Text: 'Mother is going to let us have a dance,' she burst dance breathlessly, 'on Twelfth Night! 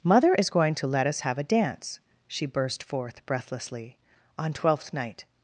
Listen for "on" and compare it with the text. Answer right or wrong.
right